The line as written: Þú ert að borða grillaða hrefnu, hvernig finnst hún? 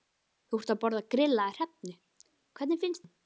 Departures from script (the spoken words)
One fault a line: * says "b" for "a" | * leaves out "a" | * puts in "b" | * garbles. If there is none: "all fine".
all fine